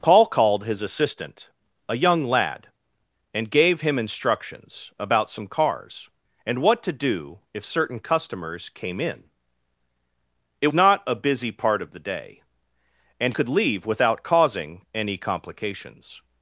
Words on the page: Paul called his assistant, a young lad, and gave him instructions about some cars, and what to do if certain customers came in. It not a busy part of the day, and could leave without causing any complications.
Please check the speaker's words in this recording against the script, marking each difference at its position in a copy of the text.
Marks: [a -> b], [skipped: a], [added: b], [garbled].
Paul called his assistant, a young lad, and gave him instructions about some cars, and what to do if certain customers came in. It not a busy part of the day, and could leave without causing any complications.